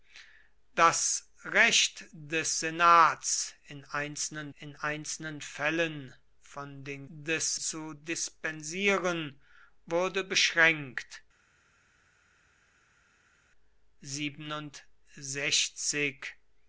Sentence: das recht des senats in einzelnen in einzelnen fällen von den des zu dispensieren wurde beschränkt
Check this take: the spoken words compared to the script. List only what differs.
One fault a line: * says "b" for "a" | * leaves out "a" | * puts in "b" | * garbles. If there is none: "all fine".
all fine